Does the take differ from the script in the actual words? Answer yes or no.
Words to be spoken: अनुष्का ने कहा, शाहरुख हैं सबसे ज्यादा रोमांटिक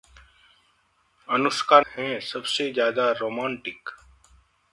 yes